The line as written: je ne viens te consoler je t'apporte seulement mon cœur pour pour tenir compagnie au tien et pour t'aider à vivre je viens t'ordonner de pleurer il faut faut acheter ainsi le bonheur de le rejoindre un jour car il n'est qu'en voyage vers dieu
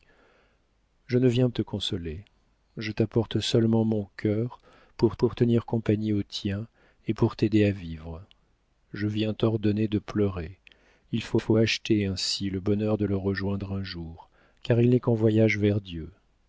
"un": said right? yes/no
yes